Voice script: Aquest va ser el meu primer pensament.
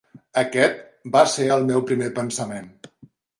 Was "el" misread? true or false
false